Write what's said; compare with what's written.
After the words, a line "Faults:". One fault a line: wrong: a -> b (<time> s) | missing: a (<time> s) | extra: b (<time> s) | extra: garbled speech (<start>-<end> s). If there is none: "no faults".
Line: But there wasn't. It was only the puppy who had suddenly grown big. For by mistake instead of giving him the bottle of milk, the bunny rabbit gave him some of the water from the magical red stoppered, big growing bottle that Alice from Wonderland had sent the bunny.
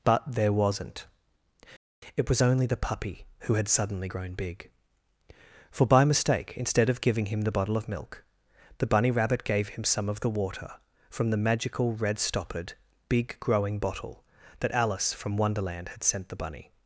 But there wasn't. It was only the puppy who had suddenly grown big. For by mistake instead of giving him the bottle of milk, the bunny rabbit gave him some of the water from the magical red stoppered, big growing bottle that Alice from Wonderland had sent the bunny.
Faults:
no faults